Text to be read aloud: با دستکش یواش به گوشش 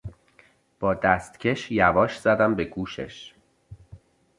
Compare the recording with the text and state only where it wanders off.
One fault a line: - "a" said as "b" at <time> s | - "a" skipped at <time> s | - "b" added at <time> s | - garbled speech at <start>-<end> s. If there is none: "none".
- "زدم" added at 2.2 s